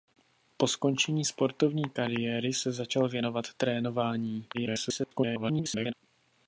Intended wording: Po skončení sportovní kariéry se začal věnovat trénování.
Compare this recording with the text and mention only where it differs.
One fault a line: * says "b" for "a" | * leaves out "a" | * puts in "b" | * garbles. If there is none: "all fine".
* garbles